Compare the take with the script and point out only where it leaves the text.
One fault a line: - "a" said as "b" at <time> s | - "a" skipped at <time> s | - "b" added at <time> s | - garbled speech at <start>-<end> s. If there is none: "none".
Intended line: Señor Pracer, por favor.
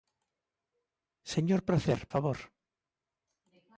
- "por" skipped at 2.1 s